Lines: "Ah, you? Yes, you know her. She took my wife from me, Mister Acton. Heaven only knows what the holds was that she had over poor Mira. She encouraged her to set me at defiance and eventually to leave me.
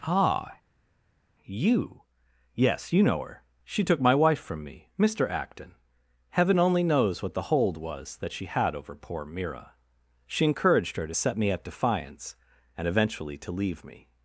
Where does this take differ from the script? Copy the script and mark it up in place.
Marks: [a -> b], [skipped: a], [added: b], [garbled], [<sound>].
"Ah, you? Yes, you know her. She took my wife from me, Mister Acton. Heaven only knows what the [holds -> hold] was that she had over poor Mira. She encouraged her to set me at defiance and eventually to leave me.